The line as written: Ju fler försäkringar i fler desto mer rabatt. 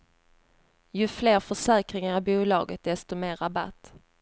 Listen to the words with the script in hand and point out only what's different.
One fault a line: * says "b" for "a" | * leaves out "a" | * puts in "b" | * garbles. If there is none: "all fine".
* says "bolaget" for "fler"